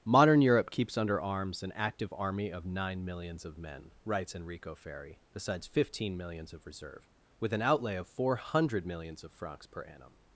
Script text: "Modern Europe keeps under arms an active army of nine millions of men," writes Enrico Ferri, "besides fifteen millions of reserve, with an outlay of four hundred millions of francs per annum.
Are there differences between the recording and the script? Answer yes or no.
no